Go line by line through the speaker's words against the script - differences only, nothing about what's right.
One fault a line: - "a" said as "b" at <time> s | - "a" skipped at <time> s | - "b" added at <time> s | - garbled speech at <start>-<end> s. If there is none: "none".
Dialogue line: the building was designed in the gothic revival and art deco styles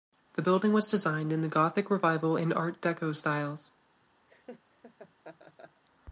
none